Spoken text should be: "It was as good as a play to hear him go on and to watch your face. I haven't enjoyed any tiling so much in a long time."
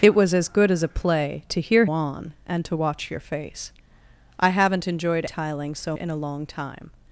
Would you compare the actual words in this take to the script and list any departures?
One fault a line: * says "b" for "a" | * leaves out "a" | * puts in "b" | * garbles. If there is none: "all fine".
* leaves out "him go"
* leaves out "any"
* leaves out "much"